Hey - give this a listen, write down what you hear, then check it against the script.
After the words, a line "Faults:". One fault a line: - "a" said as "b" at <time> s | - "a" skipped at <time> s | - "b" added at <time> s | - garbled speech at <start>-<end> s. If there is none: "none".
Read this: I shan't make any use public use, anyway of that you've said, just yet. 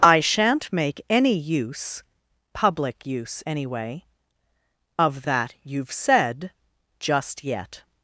I shan't make any use public use, anyway of that you've said, just yet.
Faults:
none